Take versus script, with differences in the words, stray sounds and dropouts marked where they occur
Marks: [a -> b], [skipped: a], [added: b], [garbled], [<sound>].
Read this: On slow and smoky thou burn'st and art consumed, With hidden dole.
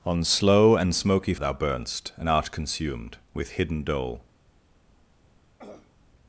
On slow and smoky thou burn'st and art consumed, With hidden dole. [throat clearing]